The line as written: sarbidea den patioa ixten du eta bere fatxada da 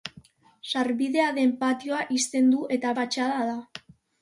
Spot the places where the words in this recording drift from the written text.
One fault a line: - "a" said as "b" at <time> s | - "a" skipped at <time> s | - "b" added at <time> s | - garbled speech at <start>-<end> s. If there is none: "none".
- "bere" skipped at 2.9 s